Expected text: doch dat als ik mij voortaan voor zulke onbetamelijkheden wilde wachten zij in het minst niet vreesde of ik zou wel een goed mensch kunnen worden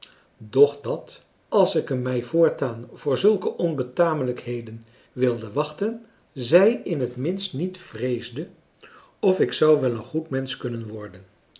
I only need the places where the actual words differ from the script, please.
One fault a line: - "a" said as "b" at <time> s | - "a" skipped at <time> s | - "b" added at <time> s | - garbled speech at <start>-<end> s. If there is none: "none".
none